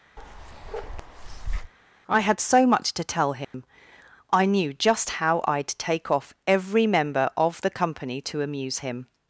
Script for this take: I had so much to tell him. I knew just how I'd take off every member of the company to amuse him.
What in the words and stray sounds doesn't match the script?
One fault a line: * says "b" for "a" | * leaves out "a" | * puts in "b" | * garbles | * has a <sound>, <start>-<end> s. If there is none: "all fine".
* has a bark, 0.2-1.7 s
* has a dropout, 3.4-3.5 s